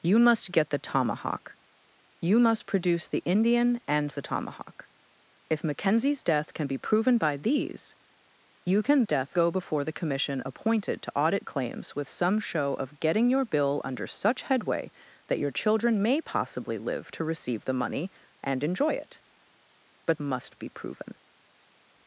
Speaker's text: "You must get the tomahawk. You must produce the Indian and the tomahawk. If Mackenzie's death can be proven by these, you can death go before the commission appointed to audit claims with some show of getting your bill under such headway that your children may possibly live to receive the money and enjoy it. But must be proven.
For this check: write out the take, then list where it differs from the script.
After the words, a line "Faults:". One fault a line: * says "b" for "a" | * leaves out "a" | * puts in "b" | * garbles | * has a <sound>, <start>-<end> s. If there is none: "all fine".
"You must get the tomahawk. You must produce the Indian and the tomahawk. If Mackenzie's death can be proven by these, you can death go before the commission appointed to audit claims with some show of getting your bill under such headway that your children may possibly live to receive the money and enjoy it. But must be proven.
Faults:
all fine